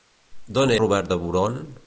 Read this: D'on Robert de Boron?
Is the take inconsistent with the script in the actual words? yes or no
no